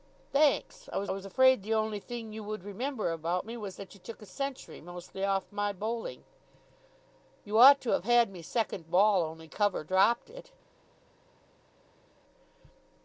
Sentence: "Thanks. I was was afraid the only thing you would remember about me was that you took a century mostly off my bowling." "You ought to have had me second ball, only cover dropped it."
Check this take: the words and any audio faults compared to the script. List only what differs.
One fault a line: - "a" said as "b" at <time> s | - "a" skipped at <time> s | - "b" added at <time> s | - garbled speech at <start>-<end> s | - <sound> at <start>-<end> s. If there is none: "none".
none